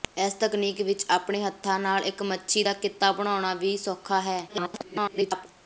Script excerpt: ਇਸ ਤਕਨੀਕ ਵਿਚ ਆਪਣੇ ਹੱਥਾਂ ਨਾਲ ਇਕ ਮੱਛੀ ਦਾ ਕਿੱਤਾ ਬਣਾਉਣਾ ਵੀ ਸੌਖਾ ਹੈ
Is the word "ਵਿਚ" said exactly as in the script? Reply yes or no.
yes